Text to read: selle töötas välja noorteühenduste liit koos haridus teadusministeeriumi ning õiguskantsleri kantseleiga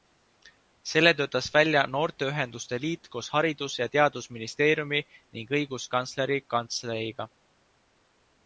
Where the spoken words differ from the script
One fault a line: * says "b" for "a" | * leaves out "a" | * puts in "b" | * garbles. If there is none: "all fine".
* puts in "ja"